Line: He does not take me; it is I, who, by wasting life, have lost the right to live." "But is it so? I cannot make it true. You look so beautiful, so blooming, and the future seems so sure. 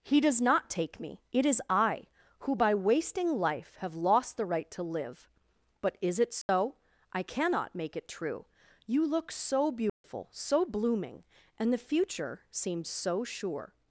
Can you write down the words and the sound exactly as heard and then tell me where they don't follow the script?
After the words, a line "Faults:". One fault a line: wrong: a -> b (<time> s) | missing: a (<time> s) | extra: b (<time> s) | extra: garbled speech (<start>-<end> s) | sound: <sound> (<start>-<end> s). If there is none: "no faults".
He does not take me; it is I, who, by wasting life, have lost the right to live." "But is it so? I cannot make it true. You look so beautiful, so blooming, and the future seems so sure.
Faults:
sound: dropout (6.4-6.5 s)
sound: dropout (9.9-10.0 s)